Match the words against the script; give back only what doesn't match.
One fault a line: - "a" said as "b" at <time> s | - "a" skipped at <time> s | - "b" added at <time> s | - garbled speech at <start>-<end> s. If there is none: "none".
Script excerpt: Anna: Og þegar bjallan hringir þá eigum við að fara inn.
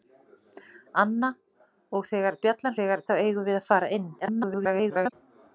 - "hringir" said as "þegar" at 2.8 s
- garbled speech at 4.2-5.1 s